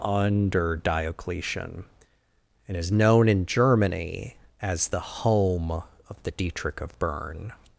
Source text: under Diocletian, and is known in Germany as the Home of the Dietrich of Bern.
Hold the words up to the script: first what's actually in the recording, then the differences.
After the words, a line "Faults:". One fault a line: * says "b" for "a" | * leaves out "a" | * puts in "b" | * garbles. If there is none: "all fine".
under Diocletian, and is known in Germany as the Home of the Dietrich of Bern.
Faults:
all fine